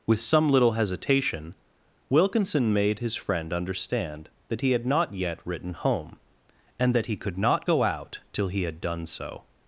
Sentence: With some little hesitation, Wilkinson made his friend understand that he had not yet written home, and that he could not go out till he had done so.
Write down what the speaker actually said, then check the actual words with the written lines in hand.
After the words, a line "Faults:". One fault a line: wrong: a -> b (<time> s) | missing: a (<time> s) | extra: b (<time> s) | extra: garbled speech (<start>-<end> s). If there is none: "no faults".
With some little hesitation, Wilkinson made his friend understand that he had not yet written home, and that he could not go out till he had done so.
Faults:
no faults